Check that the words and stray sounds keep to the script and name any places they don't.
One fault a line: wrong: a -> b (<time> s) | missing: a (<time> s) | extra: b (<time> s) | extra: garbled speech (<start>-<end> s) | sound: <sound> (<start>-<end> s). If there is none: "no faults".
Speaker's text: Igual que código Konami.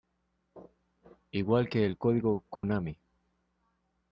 extra: el (1.8 s)
sound: dropout (2.6-2.6 s)